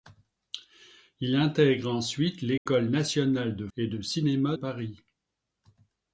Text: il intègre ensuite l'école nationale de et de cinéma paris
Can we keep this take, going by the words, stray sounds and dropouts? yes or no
no